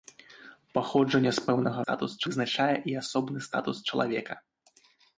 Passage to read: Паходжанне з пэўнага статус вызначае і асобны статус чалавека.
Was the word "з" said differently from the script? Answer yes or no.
no